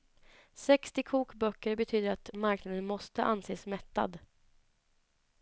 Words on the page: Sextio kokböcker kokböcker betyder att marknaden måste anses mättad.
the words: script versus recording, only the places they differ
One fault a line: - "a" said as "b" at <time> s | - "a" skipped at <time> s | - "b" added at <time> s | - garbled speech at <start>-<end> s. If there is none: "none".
- "kokböcker" skipped at 1.8 s